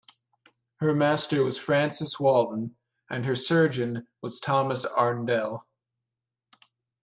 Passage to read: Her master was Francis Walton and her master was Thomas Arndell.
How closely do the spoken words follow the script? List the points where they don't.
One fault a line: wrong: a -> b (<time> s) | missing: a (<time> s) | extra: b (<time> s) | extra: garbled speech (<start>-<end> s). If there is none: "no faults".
wrong: master -> surgeon (3.4 s)